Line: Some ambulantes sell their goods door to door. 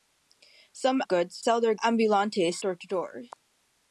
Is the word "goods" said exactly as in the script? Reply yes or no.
no